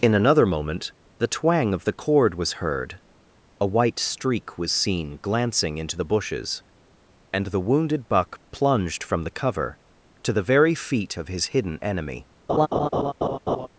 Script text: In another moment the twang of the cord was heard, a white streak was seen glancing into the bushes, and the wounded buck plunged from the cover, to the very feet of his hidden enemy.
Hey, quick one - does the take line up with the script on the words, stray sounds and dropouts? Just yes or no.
no